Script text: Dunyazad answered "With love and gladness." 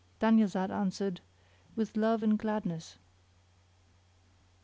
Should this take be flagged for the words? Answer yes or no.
no